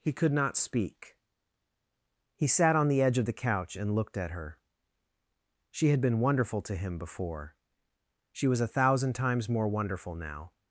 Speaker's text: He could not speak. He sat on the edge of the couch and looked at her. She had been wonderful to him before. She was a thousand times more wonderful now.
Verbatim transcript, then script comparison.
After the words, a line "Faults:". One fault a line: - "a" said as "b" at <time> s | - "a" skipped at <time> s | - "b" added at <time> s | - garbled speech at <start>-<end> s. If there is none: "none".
He could not speak. He sat on the edge of the couch and looked at her. She had been wonderful to him before. She was a thousand times more wonderful now.
Faults:
none